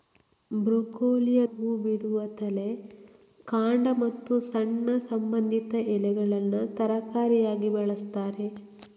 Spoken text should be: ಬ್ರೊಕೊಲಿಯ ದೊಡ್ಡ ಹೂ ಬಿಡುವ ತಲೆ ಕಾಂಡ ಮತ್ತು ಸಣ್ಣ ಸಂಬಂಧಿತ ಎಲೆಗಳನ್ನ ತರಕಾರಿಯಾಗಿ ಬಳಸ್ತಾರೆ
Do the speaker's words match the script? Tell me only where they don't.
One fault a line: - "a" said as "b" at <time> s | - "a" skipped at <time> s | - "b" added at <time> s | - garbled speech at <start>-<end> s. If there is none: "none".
- "ದೊಡ್ಡ" skipped at 1.4 s